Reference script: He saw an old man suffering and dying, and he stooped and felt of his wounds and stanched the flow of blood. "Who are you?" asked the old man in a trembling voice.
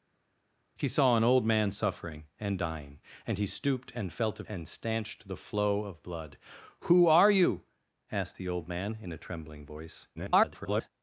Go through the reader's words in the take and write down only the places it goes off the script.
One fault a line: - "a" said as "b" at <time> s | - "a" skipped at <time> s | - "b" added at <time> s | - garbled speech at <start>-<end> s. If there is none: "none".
- "his wounds" skipped at 4.4 s
- garbled speech at 10.2-10.9 s